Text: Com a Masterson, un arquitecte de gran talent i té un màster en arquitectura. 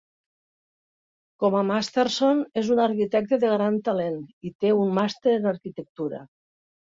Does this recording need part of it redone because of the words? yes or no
yes